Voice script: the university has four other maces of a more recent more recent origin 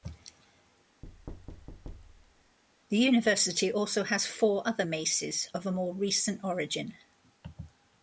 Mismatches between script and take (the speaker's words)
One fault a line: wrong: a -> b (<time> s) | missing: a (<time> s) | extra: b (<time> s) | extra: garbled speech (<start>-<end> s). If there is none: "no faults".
extra: also (3.7 s)
missing: more recent (6.4 s)